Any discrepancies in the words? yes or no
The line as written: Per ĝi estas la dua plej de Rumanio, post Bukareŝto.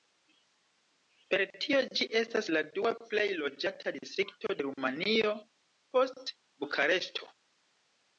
yes